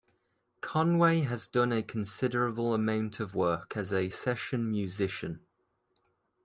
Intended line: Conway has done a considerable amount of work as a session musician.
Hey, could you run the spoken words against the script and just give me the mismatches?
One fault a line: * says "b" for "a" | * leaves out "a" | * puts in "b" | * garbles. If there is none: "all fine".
all fine